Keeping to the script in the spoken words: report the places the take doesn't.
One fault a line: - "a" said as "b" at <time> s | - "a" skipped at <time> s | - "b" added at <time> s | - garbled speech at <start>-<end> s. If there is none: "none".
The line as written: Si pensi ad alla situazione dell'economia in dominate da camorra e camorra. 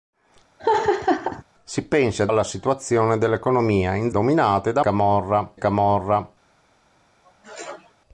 none